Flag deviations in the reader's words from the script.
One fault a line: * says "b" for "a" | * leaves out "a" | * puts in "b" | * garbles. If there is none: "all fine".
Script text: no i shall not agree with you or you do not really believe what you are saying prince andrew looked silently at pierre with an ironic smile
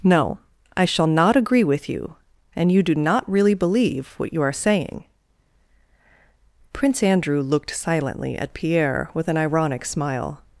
* says "and" for "or"